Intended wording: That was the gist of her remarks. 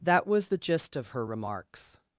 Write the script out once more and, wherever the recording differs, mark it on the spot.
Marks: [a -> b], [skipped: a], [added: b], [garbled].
That was the gist of her remarks.